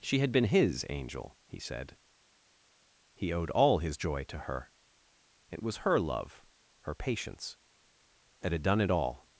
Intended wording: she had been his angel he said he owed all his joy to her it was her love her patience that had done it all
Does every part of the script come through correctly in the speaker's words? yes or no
yes